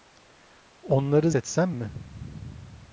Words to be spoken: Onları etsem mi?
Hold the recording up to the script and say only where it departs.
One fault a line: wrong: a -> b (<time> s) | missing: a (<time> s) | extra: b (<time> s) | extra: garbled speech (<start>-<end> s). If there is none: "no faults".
no faults